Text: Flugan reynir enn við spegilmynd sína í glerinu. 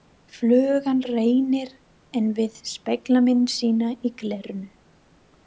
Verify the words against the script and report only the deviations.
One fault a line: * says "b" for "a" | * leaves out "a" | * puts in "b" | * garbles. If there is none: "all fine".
all fine